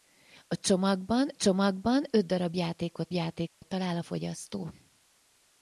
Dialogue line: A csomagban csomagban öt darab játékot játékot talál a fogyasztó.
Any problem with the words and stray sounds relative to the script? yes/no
yes